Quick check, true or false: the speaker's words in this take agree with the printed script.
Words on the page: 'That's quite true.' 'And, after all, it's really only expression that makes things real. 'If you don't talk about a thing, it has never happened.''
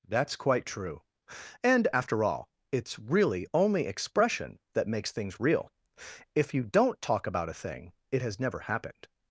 true